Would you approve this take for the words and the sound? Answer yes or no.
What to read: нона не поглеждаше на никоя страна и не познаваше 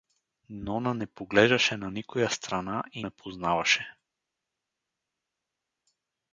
yes